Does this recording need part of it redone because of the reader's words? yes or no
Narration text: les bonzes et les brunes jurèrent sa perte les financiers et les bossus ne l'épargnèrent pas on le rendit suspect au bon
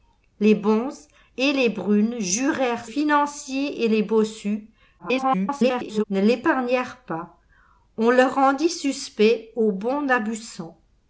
yes